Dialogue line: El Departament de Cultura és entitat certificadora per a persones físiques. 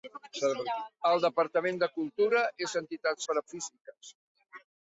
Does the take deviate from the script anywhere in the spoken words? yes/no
yes